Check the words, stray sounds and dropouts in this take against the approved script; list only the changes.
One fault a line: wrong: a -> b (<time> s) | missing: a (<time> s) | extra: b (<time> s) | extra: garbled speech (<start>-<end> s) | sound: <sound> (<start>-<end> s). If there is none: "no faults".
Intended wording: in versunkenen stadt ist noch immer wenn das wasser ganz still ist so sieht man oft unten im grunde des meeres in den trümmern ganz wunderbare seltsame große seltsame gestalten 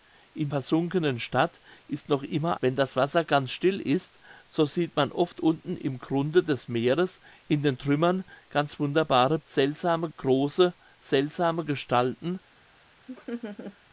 sound: laugh (13.1-13.8 s)